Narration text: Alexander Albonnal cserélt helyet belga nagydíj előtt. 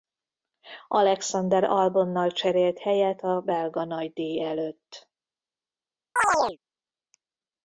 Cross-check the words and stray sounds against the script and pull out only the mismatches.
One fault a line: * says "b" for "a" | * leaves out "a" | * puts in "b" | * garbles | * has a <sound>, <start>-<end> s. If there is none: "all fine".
* puts in "a"
* has a chirp, 6.2-6.6 s